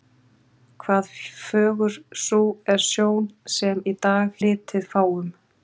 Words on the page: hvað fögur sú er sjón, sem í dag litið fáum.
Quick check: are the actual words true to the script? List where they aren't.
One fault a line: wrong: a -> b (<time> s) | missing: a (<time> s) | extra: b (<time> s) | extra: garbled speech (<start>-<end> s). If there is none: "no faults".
no faults